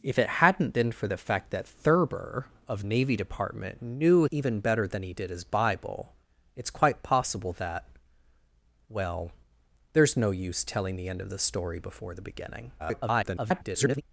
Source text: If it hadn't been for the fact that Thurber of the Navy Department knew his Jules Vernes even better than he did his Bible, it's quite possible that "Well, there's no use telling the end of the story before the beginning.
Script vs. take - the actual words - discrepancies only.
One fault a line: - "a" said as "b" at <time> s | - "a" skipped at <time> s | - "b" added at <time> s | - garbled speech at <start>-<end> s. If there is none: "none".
- "the" skipped at 2.8 s
- "his Jules Vernes" skipped at 4.2 s
- garbled speech at 12.8-14.0 s